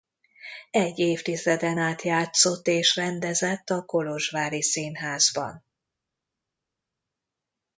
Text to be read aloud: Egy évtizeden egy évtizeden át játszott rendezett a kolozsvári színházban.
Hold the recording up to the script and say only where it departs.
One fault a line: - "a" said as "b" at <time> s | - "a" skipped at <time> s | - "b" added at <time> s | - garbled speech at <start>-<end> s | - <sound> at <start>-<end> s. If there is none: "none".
- "egy évtizeden" skipped at 1.8 s
- "és" added at 2.7 s